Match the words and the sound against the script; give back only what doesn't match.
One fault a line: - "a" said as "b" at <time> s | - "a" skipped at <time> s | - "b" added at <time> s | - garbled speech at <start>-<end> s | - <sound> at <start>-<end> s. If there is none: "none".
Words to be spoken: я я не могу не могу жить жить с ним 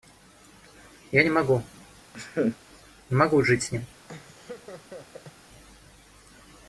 - "я" skipped at 1.2 s
- laugh at 2.1-2.6 s
- "жить" skipped at 3.6 s
- laugh at 4.1-5.3 s